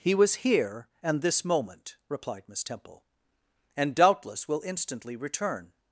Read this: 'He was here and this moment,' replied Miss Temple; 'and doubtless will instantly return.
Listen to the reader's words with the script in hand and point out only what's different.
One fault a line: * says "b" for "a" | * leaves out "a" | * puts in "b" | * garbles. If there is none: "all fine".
all fine